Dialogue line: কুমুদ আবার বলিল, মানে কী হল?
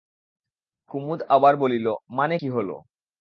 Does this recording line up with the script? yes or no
yes